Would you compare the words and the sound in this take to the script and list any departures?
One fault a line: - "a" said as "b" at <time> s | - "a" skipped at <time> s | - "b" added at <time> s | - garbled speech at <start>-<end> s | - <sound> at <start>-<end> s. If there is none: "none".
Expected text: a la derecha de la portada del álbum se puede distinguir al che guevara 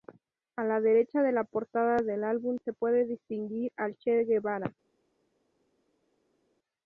none